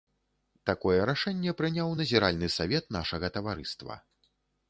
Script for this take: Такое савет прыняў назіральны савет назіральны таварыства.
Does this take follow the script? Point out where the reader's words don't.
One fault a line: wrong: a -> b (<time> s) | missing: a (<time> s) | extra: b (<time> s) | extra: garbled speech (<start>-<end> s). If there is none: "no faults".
wrong: савет -> рашэнне (1.1 s)
wrong: назіральны -> нашага (3.0 s)